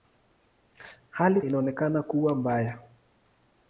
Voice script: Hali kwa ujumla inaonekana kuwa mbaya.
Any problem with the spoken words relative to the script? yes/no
yes